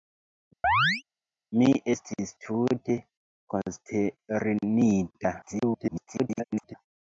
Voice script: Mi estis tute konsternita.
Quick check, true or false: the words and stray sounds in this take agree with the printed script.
false